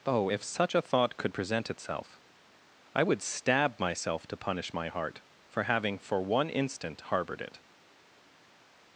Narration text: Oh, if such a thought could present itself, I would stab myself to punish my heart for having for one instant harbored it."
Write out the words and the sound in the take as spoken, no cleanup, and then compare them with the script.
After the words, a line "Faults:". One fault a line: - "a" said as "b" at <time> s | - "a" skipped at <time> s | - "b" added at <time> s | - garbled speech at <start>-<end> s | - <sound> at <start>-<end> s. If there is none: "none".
Oh, if such a thought could present itself, I would stab myself to punish my heart for having for one instant harbored it."
Faults:
none